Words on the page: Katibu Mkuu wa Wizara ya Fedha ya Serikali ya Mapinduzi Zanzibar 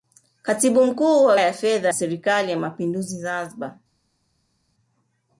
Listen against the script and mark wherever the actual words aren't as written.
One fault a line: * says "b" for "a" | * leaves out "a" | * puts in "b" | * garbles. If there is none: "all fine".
* leaves out "Wizara"
* leaves out "ya"